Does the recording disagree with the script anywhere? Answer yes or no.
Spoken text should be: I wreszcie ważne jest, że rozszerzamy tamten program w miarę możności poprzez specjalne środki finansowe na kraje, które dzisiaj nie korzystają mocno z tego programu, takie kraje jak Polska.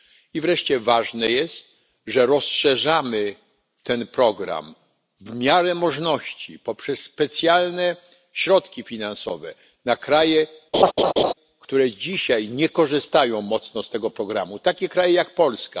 yes